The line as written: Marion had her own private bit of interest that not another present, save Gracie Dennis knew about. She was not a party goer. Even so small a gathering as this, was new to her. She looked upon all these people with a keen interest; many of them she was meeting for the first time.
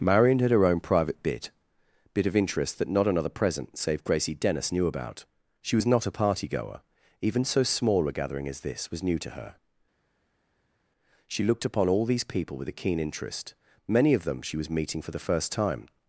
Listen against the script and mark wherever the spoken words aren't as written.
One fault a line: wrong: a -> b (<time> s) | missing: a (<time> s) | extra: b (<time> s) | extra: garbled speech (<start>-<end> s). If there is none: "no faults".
extra: bit (2.1 s)